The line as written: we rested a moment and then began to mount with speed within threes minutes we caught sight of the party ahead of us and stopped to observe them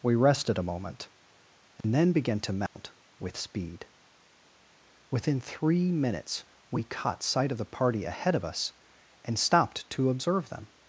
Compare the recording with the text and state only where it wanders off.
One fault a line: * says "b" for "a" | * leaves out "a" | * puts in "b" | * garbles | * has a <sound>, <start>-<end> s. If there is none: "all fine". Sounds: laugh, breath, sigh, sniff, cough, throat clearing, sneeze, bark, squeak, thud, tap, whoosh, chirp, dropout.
* has a dropout, 1.8-1.8 s
* has a dropout, 2.7-2.8 s
* says "three" for "threes"